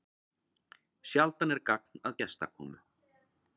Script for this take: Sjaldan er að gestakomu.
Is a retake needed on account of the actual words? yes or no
yes